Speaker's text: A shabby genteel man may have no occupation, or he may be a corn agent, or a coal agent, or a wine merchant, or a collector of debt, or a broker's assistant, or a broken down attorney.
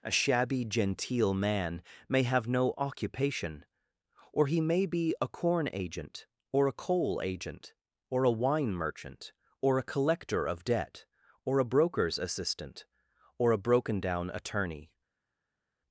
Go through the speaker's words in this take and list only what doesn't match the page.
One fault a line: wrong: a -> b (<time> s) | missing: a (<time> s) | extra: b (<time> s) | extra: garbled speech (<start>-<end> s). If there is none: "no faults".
no faults